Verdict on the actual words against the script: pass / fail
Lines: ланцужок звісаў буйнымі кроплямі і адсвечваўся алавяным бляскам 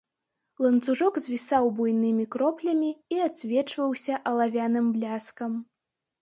pass